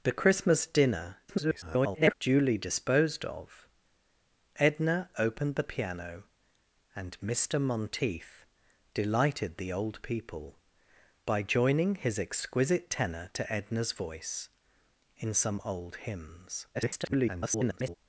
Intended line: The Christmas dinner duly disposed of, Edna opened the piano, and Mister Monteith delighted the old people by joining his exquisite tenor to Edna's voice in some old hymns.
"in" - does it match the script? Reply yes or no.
yes